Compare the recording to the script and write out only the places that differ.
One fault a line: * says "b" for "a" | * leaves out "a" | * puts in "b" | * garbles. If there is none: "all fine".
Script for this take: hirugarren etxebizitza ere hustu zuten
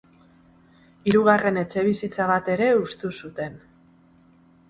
* puts in "bat"